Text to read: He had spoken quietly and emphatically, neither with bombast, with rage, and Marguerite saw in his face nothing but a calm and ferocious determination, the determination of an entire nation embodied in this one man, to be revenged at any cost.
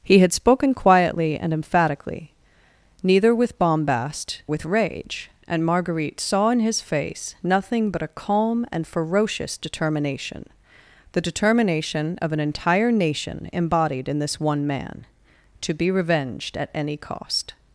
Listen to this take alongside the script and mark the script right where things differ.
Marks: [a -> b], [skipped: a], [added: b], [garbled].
He had spoken quietly and emphatically, neither with bombast, with rage, and Marguerite saw in his face nothing but a calm and ferocious determination, the determination of an entire nation embodied in this one man, to be revenged at any cost.